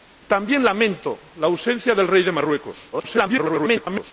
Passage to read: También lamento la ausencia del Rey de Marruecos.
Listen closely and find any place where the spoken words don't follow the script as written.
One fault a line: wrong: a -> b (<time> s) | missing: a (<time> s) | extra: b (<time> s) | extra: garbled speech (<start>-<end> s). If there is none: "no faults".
extra: garbled speech (2.9-4.1 s)